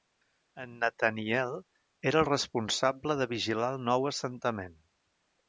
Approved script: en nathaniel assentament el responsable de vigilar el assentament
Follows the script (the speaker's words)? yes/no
no